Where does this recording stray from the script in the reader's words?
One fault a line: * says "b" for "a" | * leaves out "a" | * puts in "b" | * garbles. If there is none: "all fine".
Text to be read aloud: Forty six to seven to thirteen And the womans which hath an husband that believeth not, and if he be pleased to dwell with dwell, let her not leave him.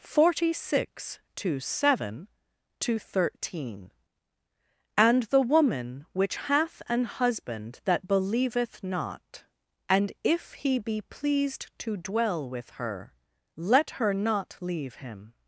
* says "woman" for "womans"
* says "her" for "dwell"